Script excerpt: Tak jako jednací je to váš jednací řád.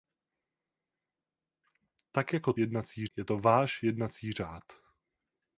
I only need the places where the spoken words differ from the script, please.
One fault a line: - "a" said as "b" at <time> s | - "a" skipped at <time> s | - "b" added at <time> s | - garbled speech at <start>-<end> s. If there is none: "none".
none